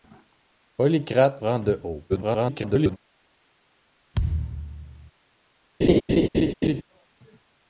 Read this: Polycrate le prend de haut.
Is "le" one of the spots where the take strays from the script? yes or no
yes